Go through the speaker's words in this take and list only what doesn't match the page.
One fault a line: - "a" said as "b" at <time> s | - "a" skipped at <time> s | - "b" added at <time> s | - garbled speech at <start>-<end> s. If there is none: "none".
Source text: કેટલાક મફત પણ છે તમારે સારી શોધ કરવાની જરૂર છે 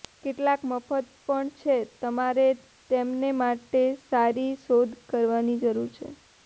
- "તેમને માટે" added at 2.9 s